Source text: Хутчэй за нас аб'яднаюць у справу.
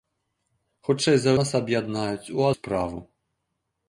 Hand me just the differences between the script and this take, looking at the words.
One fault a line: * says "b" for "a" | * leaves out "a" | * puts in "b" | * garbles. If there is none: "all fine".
all fine